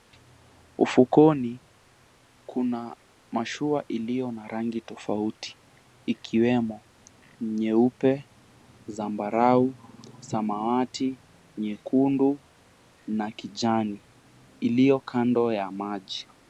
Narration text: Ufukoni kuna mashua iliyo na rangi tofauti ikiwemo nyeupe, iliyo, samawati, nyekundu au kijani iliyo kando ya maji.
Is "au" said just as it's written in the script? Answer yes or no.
no